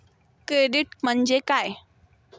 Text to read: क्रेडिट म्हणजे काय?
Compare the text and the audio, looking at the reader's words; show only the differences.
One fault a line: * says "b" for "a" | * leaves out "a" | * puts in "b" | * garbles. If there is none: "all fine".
all fine